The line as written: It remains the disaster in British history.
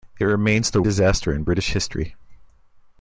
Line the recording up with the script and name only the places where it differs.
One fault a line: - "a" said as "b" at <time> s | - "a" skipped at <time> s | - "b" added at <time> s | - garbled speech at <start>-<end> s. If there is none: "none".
none